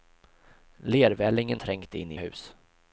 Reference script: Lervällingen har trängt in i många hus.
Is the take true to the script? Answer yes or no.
no